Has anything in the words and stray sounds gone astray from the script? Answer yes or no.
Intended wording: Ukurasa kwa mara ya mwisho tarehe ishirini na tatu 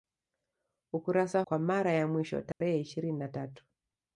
yes